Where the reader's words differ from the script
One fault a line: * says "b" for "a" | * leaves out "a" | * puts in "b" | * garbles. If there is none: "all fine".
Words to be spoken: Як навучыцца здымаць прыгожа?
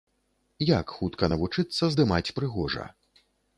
* puts in "хутка"